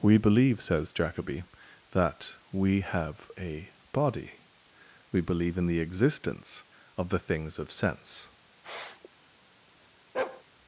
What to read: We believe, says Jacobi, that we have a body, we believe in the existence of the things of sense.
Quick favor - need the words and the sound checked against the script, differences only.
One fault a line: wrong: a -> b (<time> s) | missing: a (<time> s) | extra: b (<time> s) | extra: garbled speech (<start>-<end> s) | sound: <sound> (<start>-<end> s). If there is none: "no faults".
sound: sniff (8.6-9.1 s)
sound: bark (10.1-10.4 s)